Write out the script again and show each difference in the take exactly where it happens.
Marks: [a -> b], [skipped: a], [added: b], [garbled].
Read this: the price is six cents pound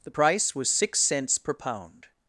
the price [is -> was] six cents [added: per] pound